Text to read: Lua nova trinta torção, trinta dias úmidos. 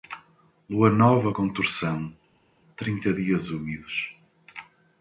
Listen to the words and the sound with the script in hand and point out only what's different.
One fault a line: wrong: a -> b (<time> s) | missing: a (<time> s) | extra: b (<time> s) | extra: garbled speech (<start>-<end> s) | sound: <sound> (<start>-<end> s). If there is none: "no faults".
wrong: trinta -> com (1.3 s)